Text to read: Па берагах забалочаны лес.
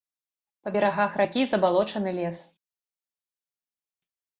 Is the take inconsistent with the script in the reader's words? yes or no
yes